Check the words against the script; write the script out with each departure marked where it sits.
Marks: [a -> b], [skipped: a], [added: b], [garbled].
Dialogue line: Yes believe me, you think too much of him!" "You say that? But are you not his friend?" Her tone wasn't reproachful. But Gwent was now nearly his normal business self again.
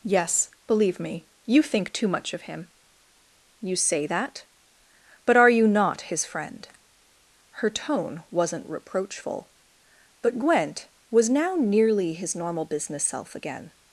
Yes believe me, you think too much of him!" "You say that? But are you not his friend?" Her tone wasn't reproachful. But Gwent was now nearly his normal business self again.